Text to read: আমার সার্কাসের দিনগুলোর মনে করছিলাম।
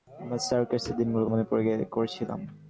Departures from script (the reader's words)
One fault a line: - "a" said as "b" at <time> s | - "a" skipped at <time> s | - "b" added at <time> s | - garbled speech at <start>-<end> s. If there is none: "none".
none